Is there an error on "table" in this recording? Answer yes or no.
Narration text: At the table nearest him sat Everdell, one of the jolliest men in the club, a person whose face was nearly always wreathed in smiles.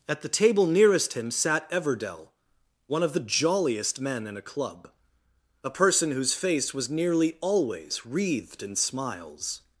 no